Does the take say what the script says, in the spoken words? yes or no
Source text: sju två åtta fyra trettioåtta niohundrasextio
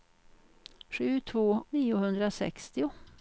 no